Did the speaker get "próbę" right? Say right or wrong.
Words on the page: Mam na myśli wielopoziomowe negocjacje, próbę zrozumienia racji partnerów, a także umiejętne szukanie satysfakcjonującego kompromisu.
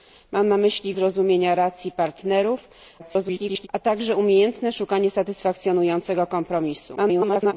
wrong